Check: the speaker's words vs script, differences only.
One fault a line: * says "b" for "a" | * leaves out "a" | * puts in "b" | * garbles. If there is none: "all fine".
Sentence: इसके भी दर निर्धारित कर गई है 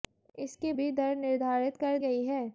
all fine